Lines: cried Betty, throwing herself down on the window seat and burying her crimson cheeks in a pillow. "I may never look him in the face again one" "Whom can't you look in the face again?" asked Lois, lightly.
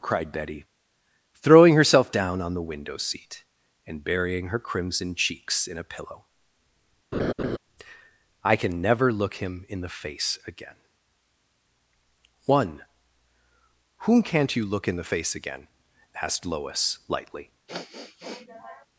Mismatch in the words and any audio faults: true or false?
true